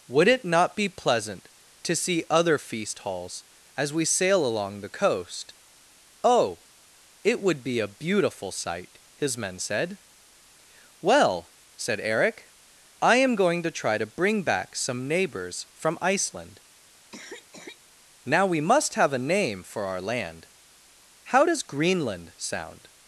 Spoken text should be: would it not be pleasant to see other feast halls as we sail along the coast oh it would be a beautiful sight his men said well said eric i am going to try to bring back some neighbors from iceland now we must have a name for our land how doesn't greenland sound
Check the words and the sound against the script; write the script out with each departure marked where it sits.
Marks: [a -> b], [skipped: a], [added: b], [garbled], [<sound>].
would it not be pleasant to see other feast halls as we sail along the coast oh it would be a beautiful sight his men said well said eric i am going to try to bring back some neighbors from iceland [cough] now we must have a name for our land how [doesn't -> does] greenland sound